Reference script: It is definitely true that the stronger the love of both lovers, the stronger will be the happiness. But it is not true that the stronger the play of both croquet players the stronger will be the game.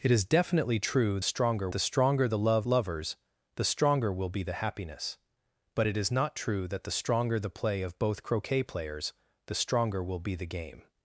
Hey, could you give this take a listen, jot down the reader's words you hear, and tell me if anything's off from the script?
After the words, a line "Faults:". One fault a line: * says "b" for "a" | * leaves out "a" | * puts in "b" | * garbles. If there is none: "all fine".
It is definitely true stronger the stronger the love lovers, the stronger will be the happiness. But it is not true that the stronger the play of both croquet players the stronger will be the game.
Faults:
* says "stronger" for "that"
* leaves out "of both"